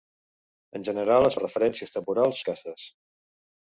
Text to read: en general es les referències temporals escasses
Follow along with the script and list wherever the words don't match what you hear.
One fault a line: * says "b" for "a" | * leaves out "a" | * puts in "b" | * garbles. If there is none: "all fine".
all fine